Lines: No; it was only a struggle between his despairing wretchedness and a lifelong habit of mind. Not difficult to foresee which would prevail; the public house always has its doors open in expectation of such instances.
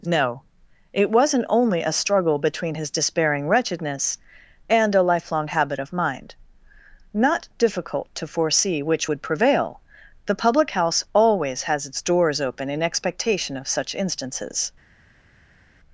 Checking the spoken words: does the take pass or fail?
fail